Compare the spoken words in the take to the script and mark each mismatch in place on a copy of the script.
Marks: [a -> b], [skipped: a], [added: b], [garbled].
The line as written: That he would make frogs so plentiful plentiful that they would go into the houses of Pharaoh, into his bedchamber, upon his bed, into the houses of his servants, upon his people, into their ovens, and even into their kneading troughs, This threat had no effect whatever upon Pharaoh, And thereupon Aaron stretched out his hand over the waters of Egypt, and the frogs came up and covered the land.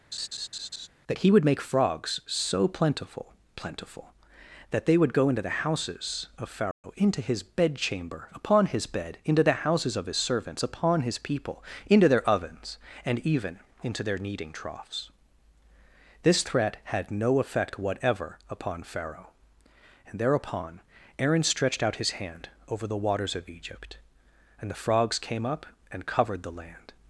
That he would make frogs so plentiful plentiful that they would go into the houses of Pharaoh, into his bedchamber, upon his bed, into the houses of his servants, upon his people, into their ovens, and even into their kneading troughs, This threat had no effect whatever upon Pharaoh, And thereupon Aaron stretched out his hand over the waters of Egypt, and the frogs came up and covered the land.